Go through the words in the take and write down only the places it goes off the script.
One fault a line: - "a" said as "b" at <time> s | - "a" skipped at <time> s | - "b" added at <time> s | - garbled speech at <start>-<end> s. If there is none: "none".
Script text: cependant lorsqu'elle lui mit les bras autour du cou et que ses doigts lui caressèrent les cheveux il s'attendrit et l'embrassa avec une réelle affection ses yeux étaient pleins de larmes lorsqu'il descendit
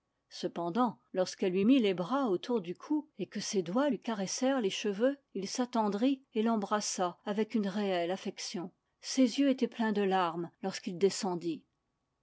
none